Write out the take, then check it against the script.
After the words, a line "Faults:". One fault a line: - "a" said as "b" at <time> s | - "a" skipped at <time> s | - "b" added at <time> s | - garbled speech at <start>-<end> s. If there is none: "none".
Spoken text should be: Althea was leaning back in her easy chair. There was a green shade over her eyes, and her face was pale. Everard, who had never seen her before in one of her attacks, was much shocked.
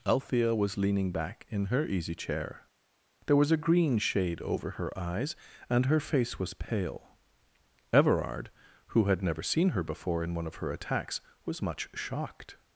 Althea was leaning back in her easy chair. There was a green shade over her eyes, and her face was pale. Everard, who had never seen her before in one of her attacks, was much shocked.
Faults:
none